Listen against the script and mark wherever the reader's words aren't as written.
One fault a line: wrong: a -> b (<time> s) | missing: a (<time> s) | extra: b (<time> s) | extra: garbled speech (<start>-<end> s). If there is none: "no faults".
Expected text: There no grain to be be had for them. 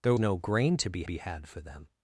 no faults